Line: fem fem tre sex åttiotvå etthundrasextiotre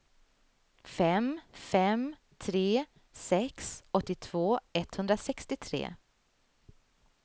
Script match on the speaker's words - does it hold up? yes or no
yes